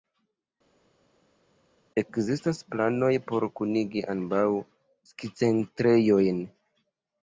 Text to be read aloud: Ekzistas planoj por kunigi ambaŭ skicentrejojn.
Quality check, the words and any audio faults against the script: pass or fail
pass